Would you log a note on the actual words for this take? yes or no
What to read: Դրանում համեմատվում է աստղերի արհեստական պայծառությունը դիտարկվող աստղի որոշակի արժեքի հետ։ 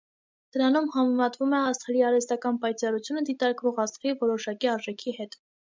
no